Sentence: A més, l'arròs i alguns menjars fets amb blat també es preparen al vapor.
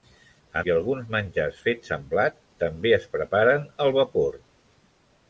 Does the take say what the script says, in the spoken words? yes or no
no